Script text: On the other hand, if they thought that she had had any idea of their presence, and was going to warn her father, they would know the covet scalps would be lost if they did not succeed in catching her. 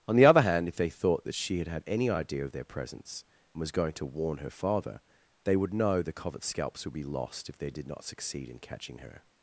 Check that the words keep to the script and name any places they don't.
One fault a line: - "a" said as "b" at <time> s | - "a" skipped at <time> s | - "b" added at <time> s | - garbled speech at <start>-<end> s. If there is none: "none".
none